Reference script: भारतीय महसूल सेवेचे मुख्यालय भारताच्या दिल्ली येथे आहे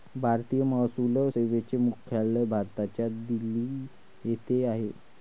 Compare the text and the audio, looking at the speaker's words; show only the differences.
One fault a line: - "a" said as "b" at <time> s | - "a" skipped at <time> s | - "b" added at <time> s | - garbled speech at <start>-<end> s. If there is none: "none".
none